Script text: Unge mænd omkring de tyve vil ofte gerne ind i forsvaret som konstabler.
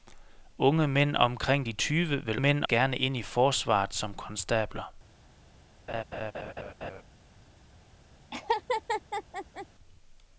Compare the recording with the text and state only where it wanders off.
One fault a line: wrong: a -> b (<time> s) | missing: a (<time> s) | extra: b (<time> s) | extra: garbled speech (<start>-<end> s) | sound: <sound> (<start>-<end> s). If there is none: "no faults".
wrong: ofte -> mænd (2.4 s)
sound: laugh (5.9-7.0 s)
sound: laugh (8.3-9.7 s)